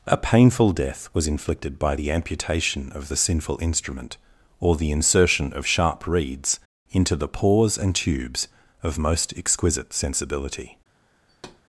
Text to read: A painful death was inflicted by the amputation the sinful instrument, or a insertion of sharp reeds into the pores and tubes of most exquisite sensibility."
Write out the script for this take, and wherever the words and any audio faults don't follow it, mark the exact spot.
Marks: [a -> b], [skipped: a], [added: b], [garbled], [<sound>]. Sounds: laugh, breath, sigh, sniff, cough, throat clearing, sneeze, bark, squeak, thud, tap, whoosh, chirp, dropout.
A painful death was inflicted by the amputation [added: of] the sinful instrument, or [a -> the] insertion of sharp reeds into the pores and tubes of most exquisite sensibility." [thud]